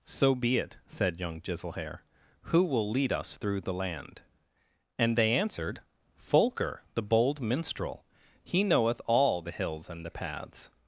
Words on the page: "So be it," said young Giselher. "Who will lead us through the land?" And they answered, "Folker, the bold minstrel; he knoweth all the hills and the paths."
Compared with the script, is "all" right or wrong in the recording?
right